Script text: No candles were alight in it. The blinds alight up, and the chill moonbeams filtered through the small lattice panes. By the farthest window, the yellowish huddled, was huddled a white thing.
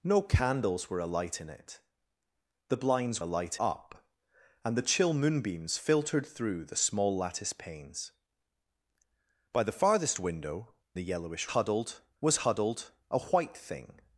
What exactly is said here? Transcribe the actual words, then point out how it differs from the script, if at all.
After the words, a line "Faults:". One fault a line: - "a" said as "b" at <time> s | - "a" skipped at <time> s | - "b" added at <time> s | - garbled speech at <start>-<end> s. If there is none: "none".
No candles were alight in it. The blinds alight up, and the chill moonbeams filtered through the small lattice panes. By the farthest window, the yellowish huddled, was huddled a white thing.
Faults:
none